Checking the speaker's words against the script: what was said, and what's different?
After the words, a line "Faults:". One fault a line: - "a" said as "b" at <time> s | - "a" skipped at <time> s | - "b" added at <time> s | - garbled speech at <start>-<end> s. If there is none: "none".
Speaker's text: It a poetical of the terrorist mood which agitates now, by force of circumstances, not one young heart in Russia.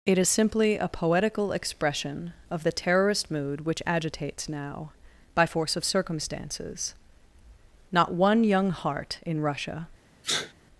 It is simply a poetical expression of the terrorist mood which agitates now, by force of circumstances, not one young heart in Russia.
Faults:
- "is simply" added at 0.2 s
- "expression" added at 1.5 s